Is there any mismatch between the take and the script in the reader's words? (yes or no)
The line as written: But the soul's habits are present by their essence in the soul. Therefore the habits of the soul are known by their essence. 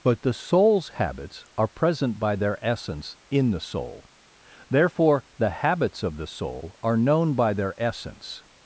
no